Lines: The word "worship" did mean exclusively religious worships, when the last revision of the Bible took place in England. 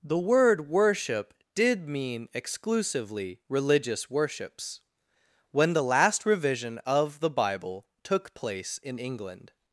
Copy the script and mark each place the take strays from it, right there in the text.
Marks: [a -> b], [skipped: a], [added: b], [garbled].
The word "worship" did mean exclusively religious worships, when the last revision of the Bible took place in England.